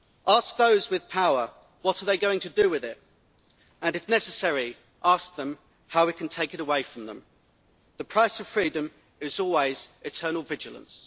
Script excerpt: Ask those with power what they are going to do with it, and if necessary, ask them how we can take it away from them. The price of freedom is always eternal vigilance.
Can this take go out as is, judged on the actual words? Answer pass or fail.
pass